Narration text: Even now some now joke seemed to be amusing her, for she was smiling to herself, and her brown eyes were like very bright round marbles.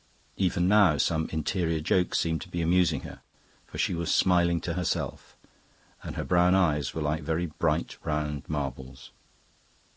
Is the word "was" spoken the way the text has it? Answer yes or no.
yes